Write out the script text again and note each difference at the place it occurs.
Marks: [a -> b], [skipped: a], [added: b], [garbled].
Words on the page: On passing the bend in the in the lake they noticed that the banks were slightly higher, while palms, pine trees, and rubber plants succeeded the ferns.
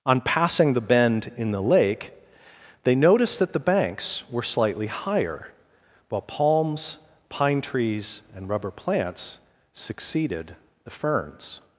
On passing the bend in the [skipped: in the] lake they noticed that the banks were slightly higher, while palms, pine trees, and rubber plants succeeded the ferns.